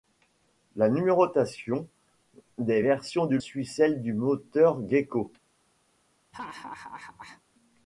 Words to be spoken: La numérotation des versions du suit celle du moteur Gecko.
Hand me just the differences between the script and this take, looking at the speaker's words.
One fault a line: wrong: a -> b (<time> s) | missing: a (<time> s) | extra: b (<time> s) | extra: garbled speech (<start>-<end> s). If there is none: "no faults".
no faults